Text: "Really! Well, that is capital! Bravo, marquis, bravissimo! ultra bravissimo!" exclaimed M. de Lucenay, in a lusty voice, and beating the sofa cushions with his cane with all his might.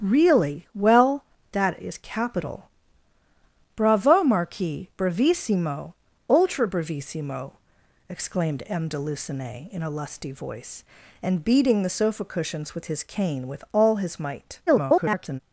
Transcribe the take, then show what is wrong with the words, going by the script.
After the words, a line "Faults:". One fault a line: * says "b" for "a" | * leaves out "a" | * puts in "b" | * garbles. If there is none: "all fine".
"Really! Well, that is capital! Bravo, marquis, bravissimo! ultra bravissimo!" exclaimed M. de Lucenay, in a lusty voice, and beating the sofa cushions with his cane with all his might. [garbled]
Faults:
* garbles